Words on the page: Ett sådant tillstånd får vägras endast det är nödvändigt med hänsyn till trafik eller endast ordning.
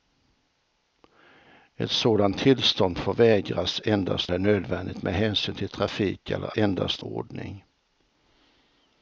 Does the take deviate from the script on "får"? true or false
false